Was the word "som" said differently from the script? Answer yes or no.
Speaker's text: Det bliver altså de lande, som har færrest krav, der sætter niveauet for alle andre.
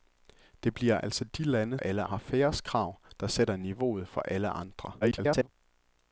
yes